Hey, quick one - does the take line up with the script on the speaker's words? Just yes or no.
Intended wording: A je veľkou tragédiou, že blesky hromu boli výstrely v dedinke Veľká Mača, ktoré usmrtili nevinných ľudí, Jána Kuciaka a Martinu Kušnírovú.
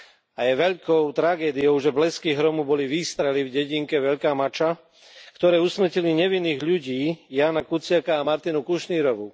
yes